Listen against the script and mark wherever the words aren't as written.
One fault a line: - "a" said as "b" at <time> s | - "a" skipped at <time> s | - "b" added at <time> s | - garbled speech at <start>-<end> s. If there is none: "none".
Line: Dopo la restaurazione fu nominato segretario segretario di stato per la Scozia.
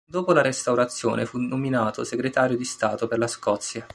- "segretario" skipped at 2.6 s